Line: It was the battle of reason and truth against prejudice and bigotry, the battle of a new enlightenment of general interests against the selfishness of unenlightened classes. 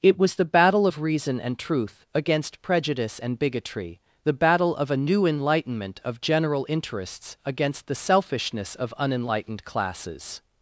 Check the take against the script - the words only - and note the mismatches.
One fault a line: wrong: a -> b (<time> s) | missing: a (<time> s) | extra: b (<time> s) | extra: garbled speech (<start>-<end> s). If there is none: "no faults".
no faults